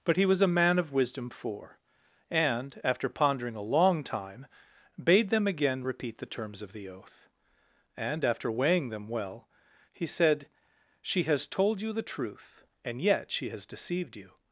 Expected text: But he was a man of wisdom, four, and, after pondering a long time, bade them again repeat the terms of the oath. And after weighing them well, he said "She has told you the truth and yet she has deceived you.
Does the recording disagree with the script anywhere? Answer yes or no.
no